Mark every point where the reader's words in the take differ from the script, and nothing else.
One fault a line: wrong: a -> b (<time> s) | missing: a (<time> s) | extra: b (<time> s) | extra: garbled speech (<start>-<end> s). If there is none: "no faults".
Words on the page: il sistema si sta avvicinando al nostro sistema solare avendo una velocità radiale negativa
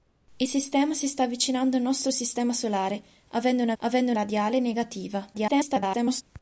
wrong: velocità -> avendo (3.8 s)
extra: garbled speech (5.3-6.2 s)